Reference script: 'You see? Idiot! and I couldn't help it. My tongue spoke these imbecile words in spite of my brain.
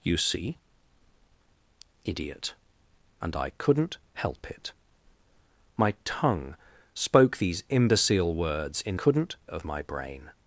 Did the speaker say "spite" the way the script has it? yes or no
no